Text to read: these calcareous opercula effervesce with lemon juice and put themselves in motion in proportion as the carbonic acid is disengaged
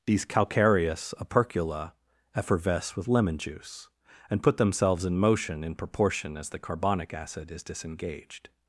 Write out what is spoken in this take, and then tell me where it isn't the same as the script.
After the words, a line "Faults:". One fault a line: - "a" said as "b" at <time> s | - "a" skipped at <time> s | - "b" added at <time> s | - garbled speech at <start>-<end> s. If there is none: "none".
these calcareous opercula effervesce with lemon juice and put themselves in motion in proportion as the carbonic acid is disengaged
Faults:
none